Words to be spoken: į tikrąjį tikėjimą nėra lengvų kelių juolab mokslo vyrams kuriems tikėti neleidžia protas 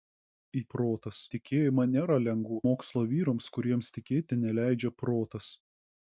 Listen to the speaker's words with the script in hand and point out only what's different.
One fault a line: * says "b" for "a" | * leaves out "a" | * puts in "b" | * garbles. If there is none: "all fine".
* says "protas" for "tikrąjį"
* leaves out "kelių juolab"